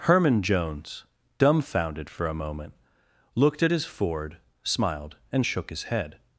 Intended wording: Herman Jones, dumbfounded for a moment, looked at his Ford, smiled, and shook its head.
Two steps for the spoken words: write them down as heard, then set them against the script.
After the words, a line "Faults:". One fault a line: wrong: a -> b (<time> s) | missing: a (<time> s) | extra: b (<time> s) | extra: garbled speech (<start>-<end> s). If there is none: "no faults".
Herman Jones, dumbfounded for a moment, looked at his Ford, smiled, and shook his head.
Faults:
wrong: its -> his (5.7 s)